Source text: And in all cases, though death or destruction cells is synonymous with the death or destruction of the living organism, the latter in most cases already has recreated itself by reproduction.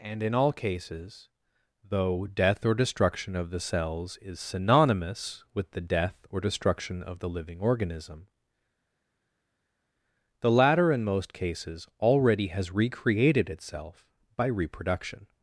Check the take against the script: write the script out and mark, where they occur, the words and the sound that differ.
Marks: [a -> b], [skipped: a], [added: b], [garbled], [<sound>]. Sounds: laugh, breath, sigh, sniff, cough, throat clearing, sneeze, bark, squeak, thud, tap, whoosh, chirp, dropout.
And in all cases, though death or destruction [added: of the] cells is synonymous with the death or destruction of the living organism, the latter in most cases already has recreated itself by reproduction.